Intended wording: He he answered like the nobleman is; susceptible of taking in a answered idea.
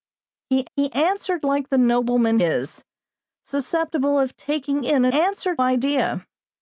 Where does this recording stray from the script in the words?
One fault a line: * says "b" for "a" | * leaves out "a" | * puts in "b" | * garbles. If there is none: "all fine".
all fine